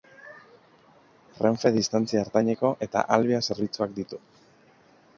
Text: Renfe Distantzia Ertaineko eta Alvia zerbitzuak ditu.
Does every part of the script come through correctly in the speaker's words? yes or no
yes